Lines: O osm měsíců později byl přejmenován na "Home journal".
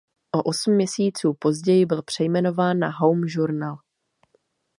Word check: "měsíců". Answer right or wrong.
right